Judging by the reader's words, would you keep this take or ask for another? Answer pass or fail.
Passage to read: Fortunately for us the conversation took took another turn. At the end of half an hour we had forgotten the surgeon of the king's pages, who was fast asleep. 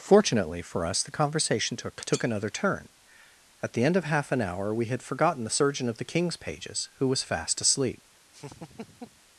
pass